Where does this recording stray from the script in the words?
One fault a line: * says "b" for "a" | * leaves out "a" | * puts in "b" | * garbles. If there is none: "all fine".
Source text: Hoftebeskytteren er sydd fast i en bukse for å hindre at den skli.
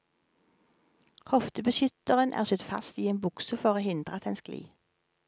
all fine